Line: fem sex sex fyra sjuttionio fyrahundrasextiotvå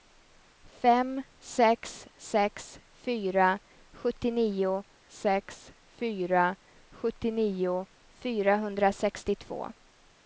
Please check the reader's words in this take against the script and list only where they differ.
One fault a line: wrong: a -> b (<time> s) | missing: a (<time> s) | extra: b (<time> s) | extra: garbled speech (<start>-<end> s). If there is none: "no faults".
extra: sex fyra sjuttionio (5.1 s)